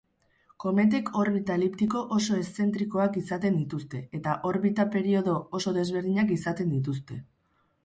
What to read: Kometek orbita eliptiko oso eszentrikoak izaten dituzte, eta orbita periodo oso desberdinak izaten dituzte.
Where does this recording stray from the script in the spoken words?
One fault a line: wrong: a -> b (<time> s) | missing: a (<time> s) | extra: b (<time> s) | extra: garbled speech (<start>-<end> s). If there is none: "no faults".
no faults